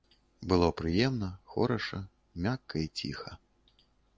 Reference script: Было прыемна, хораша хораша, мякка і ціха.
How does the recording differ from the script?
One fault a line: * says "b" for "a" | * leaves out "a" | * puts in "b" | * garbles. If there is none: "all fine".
* leaves out "хораша"